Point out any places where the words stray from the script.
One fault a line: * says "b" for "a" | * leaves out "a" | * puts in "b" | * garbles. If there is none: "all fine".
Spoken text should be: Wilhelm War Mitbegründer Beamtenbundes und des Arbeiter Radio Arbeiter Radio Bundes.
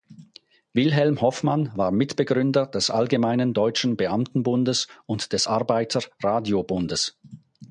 * puts in "Hoffmann"
* puts in "des Allgemeinen Deutschen"
* leaves out "Arbeiter Radio"